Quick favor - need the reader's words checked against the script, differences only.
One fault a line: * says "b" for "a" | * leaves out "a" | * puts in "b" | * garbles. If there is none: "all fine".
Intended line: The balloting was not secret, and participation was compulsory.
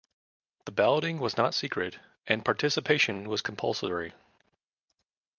all fine